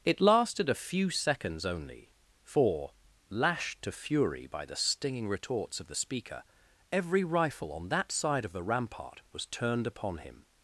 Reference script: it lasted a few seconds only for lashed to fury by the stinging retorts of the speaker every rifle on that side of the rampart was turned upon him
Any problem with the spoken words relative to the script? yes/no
no